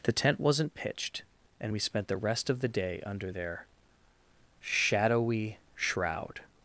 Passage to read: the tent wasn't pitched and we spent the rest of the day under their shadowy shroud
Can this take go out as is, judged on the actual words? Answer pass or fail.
pass